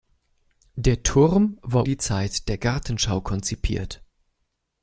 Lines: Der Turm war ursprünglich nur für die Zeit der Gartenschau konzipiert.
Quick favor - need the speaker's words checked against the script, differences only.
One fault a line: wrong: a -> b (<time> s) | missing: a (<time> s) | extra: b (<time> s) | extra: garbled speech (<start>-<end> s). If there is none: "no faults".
missing: ursprünglich nur für (1.9 s)